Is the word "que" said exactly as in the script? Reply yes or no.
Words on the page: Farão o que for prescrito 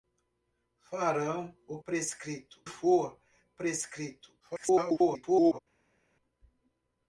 no